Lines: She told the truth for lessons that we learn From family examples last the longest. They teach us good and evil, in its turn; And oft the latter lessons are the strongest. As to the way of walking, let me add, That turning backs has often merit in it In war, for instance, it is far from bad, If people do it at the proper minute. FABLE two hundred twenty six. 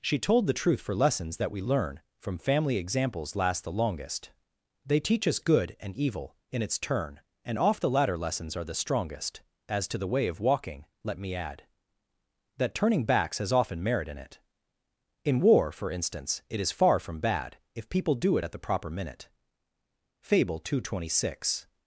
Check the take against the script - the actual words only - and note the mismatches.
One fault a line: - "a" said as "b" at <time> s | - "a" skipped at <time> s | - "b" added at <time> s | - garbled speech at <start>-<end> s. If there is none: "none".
none